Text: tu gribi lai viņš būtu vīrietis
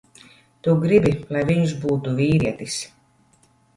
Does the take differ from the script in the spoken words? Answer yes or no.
no